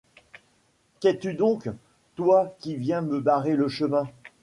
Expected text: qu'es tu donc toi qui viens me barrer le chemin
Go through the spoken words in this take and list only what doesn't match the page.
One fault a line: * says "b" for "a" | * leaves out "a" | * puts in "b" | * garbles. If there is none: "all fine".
all fine